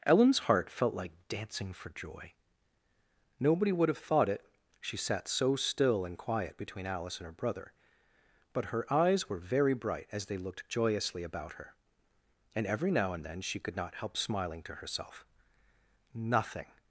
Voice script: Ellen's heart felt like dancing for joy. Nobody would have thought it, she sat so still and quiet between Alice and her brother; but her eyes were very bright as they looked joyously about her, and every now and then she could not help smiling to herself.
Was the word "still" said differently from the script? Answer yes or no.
no